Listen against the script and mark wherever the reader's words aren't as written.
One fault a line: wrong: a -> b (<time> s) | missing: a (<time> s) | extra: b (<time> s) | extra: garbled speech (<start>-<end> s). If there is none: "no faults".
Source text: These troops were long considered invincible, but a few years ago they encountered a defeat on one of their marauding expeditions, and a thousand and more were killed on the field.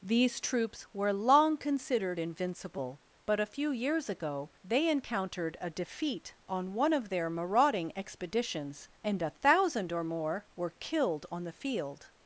wrong: and -> or (9.9 s)